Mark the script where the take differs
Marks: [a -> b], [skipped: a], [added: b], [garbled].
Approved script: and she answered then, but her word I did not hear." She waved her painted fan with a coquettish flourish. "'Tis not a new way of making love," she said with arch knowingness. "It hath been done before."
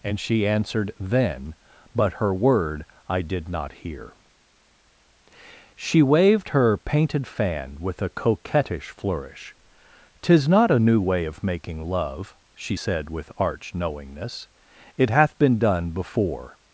and she answered then, but her word I did not hear." She waved her painted fan with a coquettish flourish. "'Tis not a new way of making love," she said with arch knowingness. "It hath been done before."